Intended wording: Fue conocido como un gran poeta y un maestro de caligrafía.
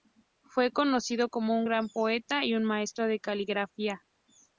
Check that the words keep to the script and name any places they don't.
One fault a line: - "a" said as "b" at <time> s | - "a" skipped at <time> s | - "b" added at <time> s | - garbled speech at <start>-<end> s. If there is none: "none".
none